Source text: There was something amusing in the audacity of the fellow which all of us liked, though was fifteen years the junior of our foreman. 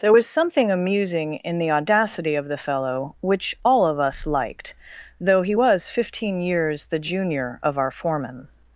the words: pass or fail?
fail